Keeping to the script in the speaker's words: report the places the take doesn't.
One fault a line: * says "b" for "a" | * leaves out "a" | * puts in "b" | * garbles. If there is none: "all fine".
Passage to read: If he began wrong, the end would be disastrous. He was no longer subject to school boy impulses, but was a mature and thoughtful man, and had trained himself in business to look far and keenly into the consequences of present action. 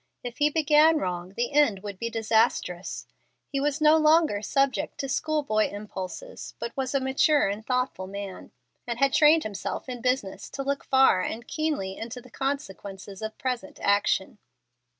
all fine